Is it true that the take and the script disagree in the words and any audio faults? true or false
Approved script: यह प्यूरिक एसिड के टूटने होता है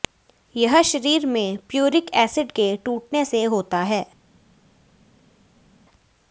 true